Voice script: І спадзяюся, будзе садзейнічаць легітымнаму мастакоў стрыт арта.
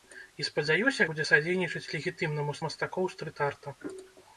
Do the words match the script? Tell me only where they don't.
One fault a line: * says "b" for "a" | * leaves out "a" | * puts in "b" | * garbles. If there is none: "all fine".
all fine